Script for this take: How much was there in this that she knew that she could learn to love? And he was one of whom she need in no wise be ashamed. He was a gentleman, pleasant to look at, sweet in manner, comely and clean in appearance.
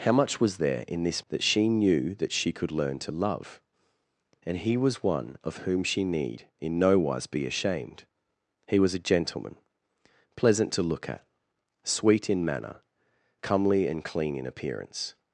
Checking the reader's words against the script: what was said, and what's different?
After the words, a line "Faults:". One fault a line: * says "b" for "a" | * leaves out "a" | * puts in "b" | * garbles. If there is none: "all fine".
How much was there in this that she knew that she could learn to love? And he was one of whom she need in no wise be ashamed. He was a gentleman, pleasant to look at, sweet in manner, comely and clean in appearance.
Faults:
all fine